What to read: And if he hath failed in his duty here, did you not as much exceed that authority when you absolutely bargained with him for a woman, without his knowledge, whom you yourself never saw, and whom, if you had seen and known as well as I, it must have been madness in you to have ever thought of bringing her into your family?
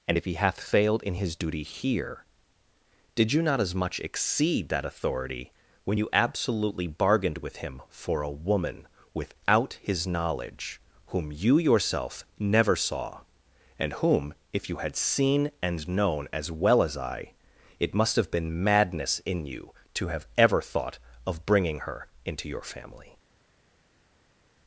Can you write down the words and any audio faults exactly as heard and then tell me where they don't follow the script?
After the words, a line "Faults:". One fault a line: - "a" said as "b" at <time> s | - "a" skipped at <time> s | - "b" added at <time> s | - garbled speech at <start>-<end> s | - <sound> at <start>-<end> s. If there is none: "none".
And if he hath failed in his duty here, did you not as much exceed that authority when you absolutely bargained with him for a woman, without his knowledge, whom you yourself never saw, and whom, if you had seen and known as well as I, it must have been madness in you to have ever thought of bringing her into your family?
Faults:
none